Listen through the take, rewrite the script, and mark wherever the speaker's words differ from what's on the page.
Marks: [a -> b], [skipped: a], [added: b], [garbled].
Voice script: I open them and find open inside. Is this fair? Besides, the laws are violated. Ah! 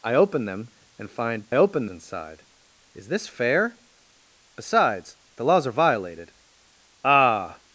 I open them and find open inside. Is this fair? Besides, the laws are violated. Ah!